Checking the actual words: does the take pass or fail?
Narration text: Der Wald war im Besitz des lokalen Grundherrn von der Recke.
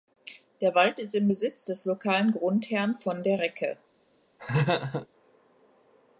fail